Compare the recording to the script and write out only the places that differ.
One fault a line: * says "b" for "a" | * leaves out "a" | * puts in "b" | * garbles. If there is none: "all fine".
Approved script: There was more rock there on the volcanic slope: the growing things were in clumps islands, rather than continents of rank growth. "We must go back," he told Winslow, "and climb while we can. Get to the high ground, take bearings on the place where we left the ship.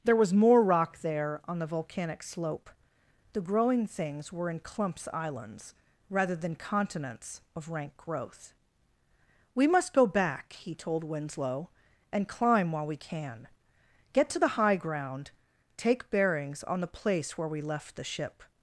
all fine